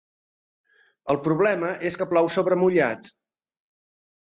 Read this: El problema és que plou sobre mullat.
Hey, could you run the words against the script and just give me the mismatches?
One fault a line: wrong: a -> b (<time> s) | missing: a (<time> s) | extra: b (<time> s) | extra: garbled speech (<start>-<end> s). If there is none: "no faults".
no faults